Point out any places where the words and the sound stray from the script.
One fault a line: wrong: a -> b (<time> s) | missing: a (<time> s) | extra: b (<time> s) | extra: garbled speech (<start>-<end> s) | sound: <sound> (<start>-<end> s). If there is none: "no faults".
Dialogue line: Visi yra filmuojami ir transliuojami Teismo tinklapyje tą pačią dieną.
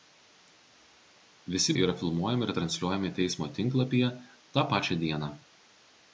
no faults